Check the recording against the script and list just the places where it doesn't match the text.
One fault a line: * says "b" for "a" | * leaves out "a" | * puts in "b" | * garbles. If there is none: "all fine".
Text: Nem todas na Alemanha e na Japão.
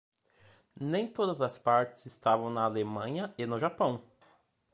* puts in "as partes estavam"
* says "no" for "na"